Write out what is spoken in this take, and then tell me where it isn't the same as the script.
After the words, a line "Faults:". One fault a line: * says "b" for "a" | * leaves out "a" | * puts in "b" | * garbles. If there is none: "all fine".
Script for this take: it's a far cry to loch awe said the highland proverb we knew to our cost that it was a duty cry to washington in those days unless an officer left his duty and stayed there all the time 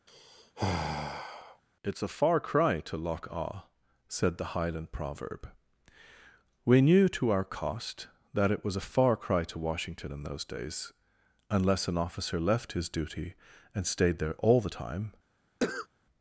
it's a far cry to loch awe said the highland proverb we knew to our cost that it was a far cry to washington in those days unless an officer left his duty and stayed there all the time
Faults:
* says "far" for "duty"